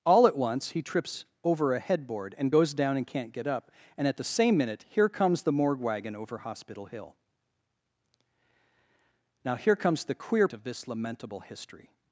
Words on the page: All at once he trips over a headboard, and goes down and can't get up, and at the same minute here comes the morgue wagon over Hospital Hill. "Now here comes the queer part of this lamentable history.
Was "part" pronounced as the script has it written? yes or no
no